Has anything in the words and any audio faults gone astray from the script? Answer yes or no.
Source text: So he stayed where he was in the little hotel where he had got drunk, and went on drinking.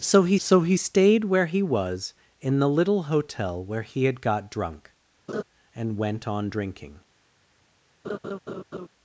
yes